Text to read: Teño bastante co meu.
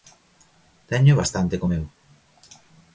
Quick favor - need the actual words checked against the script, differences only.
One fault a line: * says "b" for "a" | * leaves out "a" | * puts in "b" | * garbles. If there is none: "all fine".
all fine